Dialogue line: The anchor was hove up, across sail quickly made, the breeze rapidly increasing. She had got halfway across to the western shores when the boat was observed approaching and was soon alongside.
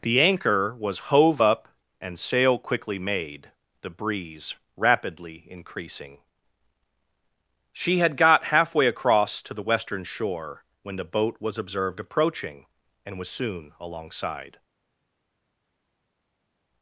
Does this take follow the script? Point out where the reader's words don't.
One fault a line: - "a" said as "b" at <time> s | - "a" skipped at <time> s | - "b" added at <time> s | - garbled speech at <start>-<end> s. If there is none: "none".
- "across" said as "and" at 2.0 s
- "shores" said as "shore" at 10.0 s